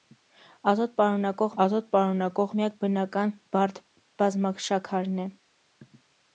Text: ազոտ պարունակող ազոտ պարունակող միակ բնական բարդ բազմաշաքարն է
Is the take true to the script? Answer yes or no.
yes